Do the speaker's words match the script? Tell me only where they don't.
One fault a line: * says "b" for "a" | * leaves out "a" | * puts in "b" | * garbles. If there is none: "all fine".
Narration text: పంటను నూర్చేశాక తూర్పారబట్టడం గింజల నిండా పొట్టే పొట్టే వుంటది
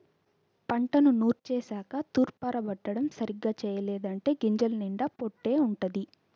* puts in "సరిగ్గా చెయ్యలేదంటే"
* leaves out "పొట్టే"